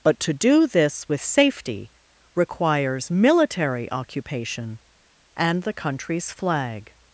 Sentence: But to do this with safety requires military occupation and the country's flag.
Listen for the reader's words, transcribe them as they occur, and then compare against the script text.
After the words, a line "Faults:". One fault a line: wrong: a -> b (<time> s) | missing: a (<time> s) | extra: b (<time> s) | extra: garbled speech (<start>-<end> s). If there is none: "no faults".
But to do this with safety requires military occupation and the country's flag.
Faults:
no faults